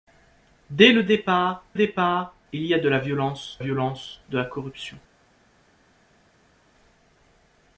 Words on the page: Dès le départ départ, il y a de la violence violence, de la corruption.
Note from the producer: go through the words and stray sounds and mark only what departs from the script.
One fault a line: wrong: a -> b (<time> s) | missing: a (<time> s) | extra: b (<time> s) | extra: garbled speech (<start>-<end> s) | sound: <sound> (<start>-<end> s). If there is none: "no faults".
no faults